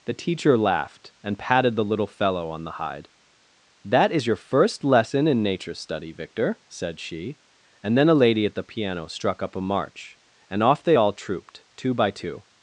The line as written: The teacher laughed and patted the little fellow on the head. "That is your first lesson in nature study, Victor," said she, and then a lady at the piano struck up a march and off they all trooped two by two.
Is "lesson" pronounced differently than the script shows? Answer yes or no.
no